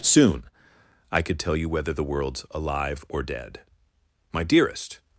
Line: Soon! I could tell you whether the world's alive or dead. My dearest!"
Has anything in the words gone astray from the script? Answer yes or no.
no